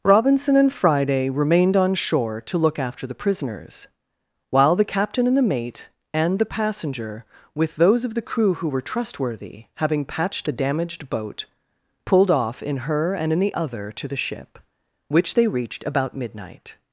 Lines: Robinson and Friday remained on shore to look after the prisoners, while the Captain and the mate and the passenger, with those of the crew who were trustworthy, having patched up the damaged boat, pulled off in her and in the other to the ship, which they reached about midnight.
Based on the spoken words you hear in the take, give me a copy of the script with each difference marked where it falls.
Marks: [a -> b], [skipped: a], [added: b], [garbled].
Robinson and Friday remained on shore to look after the prisoners, while the Captain and the mate and the passenger, with those of the crew who were trustworthy, having patched [skipped: up] the damaged boat, pulled off in her and in the other to the ship, which they reached about midnight.